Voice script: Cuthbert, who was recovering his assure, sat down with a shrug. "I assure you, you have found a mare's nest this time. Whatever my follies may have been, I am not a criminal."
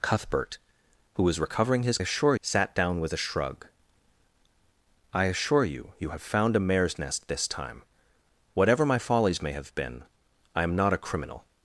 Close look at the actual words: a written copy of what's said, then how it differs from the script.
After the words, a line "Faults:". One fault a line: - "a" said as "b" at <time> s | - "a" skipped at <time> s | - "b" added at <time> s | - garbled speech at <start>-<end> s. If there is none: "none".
Cuthbert, who was recovering his assure, sat down with a shrug. "I assure you, you have found a mare's nest this time. Whatever my follies may have been, I am not a criminal."
Faults:
none